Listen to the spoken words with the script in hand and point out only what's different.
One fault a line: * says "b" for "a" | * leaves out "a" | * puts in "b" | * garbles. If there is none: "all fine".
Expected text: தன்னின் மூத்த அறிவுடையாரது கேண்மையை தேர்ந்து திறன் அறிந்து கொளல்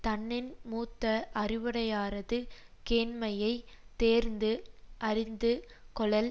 * leaves out "திறன்"